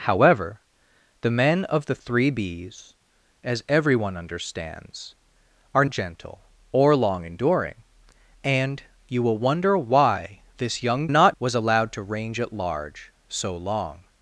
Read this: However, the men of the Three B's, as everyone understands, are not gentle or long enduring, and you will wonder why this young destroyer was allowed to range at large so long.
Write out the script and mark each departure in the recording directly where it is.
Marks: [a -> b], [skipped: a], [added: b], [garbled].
However, the men of the Three B's, as everyone understands, are [skipped: not] gentle or long enduring, and you will wonder why this young [destroyer -> not] was allowed to range at large so long.